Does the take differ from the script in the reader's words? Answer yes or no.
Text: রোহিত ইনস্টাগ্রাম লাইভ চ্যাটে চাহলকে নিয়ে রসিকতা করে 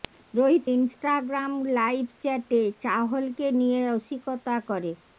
no